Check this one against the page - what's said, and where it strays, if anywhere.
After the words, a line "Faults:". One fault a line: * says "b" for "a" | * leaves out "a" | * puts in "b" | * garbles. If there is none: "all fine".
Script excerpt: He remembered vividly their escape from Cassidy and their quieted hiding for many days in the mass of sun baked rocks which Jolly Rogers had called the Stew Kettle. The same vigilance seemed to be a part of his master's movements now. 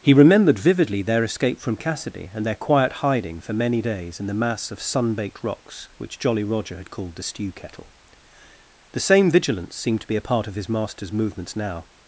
He remembered vividly their escape from Cassidy and their quiet hiding for many days in the mass of sun baked rocks which Jolly Roger had called the Stew Kettle. The same vigilance seemed to be a part of his master's movements now.
Faults:
* says "quiet" for "quieted"
* says "Roger" for "Rogers"